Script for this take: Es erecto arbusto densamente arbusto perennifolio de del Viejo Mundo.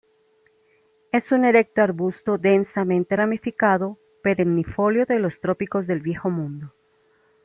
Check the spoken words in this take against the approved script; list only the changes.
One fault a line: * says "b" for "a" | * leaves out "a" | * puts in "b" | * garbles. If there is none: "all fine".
* puts in "un"
* says "ramificado" for "arbusto"
* puts in "los trópicos"